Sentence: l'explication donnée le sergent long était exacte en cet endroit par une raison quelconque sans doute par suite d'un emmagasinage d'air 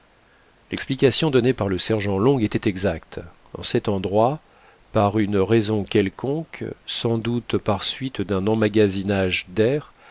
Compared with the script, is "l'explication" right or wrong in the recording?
right